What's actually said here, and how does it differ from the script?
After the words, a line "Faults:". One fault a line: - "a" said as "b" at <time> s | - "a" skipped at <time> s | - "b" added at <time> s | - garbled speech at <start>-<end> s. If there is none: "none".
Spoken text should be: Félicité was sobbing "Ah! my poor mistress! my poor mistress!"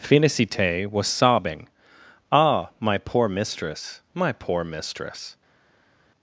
Félicité was sobbing "Ah! my poor mistress! my poor mistress!"
Faults:
none